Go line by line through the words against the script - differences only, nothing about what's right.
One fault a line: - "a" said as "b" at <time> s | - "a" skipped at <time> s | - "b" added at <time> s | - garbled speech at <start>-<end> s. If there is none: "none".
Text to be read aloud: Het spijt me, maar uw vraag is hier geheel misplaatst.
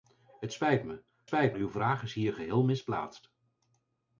- "maar" said as "spijt" at 1.2 s